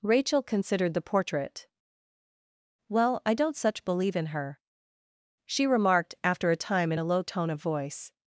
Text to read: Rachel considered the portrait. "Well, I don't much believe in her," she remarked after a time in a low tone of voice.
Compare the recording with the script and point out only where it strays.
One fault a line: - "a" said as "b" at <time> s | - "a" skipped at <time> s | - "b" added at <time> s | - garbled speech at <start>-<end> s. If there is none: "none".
- "much" said as "such" at 3.6 s